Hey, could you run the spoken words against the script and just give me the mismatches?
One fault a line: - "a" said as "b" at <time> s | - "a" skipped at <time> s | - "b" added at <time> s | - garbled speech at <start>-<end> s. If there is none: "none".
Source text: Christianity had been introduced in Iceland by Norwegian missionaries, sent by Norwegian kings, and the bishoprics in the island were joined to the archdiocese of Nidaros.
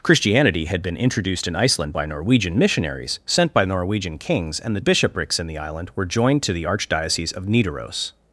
none